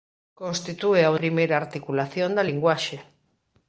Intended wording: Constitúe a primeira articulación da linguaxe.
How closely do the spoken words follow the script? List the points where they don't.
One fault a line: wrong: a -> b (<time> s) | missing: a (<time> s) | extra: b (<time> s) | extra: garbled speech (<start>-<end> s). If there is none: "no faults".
no faults